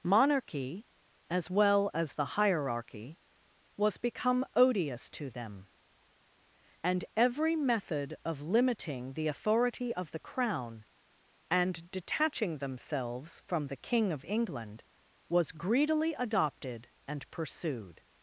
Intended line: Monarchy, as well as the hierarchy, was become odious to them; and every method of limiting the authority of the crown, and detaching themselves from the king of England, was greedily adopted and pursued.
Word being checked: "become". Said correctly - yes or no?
yes